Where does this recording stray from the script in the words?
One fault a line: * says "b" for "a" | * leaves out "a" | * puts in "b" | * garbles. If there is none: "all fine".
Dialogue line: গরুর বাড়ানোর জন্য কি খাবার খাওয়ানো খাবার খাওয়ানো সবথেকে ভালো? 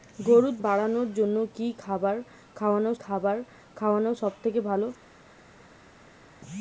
all fine